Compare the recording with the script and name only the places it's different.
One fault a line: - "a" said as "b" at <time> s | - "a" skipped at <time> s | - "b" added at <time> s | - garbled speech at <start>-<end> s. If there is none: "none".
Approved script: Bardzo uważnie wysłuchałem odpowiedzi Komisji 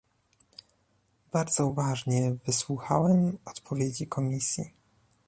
none